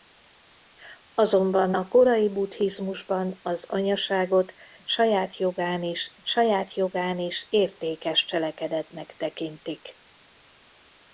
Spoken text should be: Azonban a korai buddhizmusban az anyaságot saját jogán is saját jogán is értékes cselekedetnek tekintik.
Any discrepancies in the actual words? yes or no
no